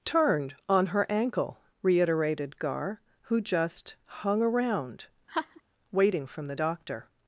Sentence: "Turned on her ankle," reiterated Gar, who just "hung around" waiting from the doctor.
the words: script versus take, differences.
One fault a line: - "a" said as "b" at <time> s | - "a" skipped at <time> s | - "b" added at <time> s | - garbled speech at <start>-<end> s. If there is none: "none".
none